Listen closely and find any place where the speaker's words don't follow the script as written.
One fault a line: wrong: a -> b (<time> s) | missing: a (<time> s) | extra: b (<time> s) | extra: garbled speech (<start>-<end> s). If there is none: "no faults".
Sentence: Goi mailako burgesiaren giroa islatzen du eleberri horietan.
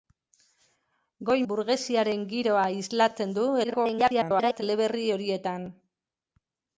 missing: mailako (1.4 s)
extra: garbled speech (3.6-4.6 s)